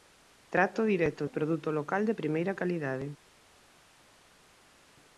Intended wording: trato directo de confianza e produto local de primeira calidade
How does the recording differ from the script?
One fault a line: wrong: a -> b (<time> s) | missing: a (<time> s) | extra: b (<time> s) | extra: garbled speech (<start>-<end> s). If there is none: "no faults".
missing: de confianza (1.3 s)